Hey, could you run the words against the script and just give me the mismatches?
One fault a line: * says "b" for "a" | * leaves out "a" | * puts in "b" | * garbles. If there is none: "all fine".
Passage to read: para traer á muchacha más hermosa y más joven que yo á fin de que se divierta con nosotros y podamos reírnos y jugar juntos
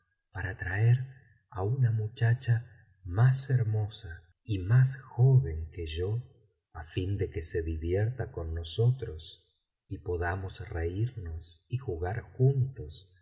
* puts in "una"